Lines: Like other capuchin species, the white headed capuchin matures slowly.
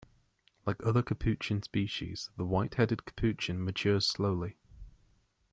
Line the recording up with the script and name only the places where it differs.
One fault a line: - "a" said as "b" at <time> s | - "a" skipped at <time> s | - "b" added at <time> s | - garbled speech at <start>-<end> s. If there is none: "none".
none